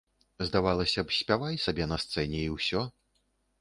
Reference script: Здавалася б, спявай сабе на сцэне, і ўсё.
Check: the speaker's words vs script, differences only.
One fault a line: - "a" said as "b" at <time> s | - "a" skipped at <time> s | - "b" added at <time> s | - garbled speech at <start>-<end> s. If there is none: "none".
none